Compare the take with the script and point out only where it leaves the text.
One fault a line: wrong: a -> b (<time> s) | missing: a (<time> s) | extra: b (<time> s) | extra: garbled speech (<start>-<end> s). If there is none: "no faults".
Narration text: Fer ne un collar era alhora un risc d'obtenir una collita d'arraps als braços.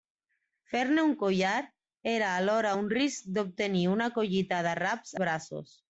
missing: als (5.2 s)